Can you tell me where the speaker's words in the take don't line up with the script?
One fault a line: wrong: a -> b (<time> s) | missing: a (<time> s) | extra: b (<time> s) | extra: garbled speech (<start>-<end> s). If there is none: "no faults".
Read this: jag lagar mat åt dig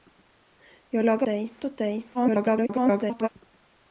wrong: mat -> dig (1.2 s)
extra: garbled speech (2.1-3.3 s)